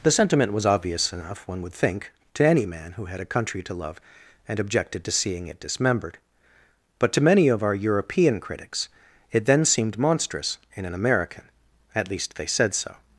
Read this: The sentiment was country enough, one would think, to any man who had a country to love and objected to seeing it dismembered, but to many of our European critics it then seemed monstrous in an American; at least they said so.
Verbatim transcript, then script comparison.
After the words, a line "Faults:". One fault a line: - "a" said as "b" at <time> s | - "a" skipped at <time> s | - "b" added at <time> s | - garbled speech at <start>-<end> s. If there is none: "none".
The sentiment was obvious enough, one would think, to any man who had a country to love and objected to seeing it dismembered, but to many of our European critics it then seemed monstrous in an American; at least they said so.
Faults:
- "country" said as "obvious" at 0.7 s